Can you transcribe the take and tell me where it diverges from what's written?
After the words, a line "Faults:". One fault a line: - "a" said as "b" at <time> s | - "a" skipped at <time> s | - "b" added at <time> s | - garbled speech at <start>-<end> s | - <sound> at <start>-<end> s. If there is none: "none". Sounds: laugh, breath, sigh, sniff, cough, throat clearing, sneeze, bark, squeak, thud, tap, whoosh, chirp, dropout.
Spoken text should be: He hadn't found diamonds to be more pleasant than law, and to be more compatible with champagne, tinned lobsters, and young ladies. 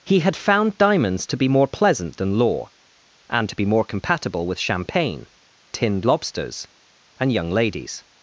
He had found diamonds to be more pleasant than law, and to be more compatible with champagne, tinned lobsters, and young ladies.
Faults:
- "hadn't" said as "had" at 0.2 s